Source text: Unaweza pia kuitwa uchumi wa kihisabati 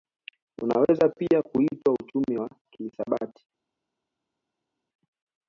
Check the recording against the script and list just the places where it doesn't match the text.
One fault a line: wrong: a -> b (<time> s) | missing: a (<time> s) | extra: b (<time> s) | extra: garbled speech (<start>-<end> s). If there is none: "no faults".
no faults